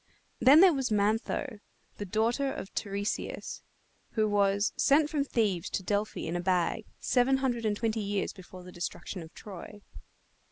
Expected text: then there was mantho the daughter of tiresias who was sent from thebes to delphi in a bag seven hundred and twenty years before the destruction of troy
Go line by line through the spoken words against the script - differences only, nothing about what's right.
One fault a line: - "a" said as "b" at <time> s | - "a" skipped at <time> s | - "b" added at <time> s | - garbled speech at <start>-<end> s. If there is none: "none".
none